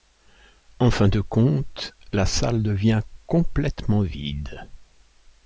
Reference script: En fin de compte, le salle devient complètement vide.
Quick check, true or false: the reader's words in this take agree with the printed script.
false